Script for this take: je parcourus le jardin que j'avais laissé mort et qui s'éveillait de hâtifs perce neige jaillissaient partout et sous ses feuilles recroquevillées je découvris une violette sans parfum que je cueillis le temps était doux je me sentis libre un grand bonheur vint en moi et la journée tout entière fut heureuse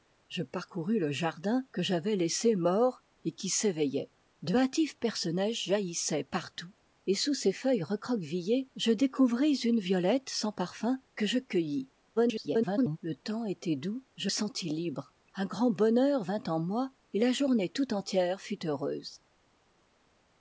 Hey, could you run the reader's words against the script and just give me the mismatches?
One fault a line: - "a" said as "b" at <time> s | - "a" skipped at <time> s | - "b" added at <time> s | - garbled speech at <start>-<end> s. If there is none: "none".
- garbled speech at 12.2-13.0 s
- "me" skipped at 14.3 s